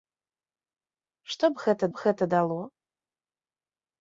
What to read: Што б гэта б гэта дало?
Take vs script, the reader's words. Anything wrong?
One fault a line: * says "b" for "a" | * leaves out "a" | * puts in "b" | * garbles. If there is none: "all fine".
all fine